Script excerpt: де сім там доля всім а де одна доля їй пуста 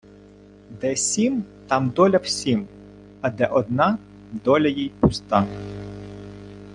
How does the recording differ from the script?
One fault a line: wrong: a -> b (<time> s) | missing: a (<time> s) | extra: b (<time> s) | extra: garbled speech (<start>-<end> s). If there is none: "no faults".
no faults